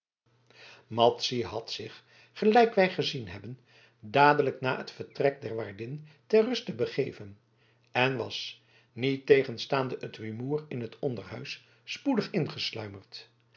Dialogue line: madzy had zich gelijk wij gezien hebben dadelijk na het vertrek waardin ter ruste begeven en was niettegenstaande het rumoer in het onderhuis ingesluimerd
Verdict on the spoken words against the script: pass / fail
fail